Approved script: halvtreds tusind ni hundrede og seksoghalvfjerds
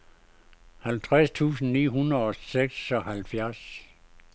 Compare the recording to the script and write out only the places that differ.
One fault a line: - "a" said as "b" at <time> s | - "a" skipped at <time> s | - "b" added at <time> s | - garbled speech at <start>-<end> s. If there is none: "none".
none